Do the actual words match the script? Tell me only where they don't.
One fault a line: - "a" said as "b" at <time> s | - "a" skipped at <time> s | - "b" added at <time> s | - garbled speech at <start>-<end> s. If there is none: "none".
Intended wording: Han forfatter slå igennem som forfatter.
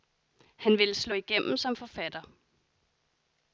- "forfatter" said as "ville" at 0.8 s